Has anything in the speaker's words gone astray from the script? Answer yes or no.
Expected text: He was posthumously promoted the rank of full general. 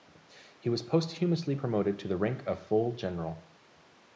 yes